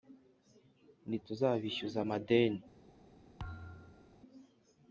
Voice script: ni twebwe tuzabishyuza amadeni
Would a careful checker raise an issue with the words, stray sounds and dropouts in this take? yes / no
yes